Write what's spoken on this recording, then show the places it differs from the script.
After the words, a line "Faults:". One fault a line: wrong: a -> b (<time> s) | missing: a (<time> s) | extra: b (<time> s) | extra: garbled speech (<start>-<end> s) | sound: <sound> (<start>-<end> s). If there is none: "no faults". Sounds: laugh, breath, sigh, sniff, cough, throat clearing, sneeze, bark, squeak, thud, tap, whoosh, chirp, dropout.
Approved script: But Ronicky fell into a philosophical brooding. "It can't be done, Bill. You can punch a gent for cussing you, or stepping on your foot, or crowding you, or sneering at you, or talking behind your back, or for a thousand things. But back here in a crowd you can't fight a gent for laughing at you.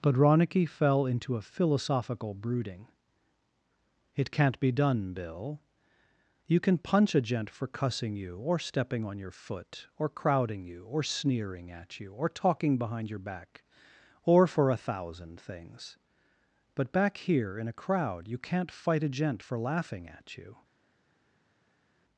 But Ronicky fell into a philosophical brooding. "It can't be done, Bill. You can punch a gent for cussing you, or stepping on your foot, or crowding you, or sneering at you, or talking behind your back, or for a thousand things. But back here in a crowd you can't fight a gent for laughing at you.
Faults:
no faults